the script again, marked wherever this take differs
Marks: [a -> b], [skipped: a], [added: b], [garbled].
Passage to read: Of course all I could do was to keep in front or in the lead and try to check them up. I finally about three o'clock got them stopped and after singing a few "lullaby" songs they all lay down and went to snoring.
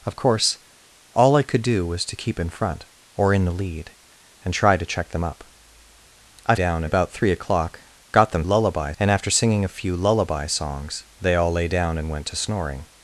Of course all I could do was to keep in front or in the lead and try to check them up. I [finally -> down] about three o'clock got them [stopped -> lullaby] and after singing a few "lullaby" songs they all lay down and went to snoring.